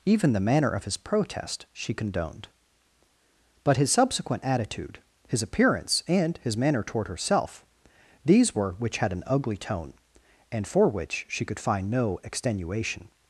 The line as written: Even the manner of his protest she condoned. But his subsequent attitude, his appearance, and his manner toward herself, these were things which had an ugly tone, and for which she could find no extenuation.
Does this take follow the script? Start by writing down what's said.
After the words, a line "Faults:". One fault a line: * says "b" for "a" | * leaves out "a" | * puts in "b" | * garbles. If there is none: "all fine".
Even the manner of his protest she condoned. But his subsequent attitude, his appearance, and his manner toward herself, these were which had an ugly tone, and for which she could find no extenuation.
Faults:
* leaves out "things"